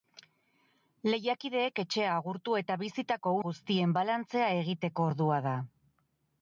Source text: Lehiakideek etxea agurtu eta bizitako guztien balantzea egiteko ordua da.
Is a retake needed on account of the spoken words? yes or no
no